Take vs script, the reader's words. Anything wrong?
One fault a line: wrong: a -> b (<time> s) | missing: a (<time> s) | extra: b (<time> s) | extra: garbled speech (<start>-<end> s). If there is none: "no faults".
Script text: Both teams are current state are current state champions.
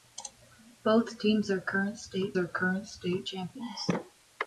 no faults